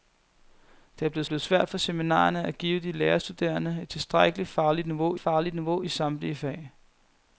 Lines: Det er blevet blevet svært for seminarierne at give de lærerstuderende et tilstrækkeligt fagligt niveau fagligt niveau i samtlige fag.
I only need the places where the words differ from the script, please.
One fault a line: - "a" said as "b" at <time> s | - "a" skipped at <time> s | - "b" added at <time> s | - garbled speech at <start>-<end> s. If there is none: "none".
none